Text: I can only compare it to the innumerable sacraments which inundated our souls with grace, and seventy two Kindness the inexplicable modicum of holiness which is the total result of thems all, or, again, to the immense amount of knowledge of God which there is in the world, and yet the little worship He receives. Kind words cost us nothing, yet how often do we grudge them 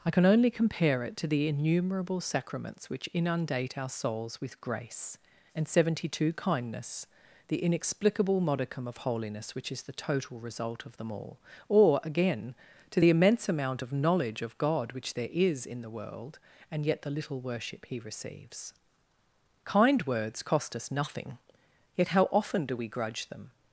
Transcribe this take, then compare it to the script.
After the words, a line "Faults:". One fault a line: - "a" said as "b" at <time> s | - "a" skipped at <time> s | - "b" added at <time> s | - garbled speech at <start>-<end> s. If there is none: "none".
I can only compare it to the innumerable sacraments which inundate our souls with grace, and seventy two Kindness the inexplicable modicum of holiness which is the total result of them all, or, again, to the immense amount of knowledge of God which there is in the world, and yet the little worship He receives. Kind words cost us nothing, yet how often do we grudge them
Faults:
- "inundated" said as "inundate" at 3.1 s
- "thems" said as "them" at 11.0 s